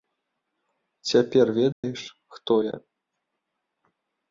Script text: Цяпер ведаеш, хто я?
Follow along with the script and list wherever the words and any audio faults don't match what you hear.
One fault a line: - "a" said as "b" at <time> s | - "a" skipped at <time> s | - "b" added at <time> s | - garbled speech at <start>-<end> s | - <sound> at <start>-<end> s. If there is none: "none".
- dropout at 1.7-1.8 s